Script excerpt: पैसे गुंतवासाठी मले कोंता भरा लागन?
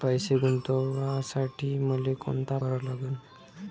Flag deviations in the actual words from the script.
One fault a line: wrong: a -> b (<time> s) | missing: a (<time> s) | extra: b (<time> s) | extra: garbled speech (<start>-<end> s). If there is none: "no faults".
no faults